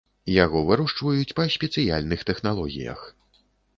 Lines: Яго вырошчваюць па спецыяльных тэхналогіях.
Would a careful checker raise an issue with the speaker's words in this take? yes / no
no